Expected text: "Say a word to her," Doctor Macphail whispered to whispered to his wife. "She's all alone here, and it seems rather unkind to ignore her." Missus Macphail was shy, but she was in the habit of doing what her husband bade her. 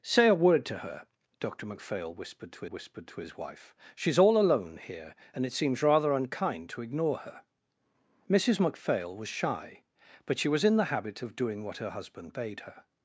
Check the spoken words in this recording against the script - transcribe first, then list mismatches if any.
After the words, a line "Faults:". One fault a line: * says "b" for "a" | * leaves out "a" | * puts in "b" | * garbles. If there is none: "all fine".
"Say a word to her," Doctor Macphail whispered to whispered to his wife. "She's all alone here, and it seems rather unkind to ignore her." Missus Macphail was shy, but she was in the habit of doing what her husband bade her.
Faults:
all fine